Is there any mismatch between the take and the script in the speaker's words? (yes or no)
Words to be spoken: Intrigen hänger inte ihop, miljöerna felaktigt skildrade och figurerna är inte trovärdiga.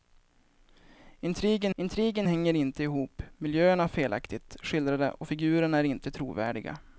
yes